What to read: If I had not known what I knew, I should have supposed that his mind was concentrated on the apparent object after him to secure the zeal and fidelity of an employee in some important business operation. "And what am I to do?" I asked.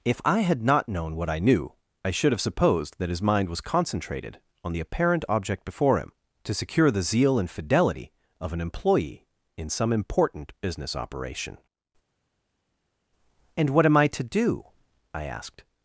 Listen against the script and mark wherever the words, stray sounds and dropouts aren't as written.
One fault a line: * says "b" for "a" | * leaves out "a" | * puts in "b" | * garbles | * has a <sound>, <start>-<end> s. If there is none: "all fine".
* says "before" for "after"